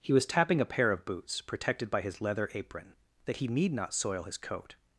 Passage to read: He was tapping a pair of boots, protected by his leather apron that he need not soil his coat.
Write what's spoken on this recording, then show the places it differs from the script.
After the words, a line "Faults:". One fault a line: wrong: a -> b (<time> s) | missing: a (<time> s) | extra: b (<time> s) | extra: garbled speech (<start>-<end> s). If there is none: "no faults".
He was tapping a pair of boots, protected by his leather apron that he need not soil his coat.
Faults:
no faults